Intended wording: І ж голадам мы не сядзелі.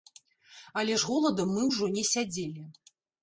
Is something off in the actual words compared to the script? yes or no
yes